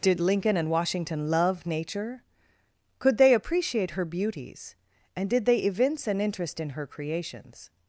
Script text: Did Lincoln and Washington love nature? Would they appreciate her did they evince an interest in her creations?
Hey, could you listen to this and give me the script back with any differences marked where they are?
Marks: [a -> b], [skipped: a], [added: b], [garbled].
Did Lincoln and Washington love nature? [Would -> Could] they appreciate her [added: beauties and] did they evince an interest in her creations?